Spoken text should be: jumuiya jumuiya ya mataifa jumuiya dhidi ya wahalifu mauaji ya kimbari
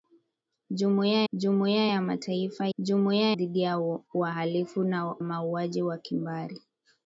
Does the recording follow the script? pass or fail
pass